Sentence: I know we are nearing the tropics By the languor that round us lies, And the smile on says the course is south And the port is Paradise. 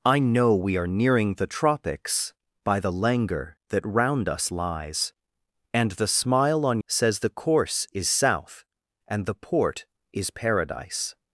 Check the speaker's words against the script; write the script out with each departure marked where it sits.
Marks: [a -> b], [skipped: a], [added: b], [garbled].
I know we are nearing the tropics By the languor that round us lies, And the smile on says the course is south And the port is Paradise.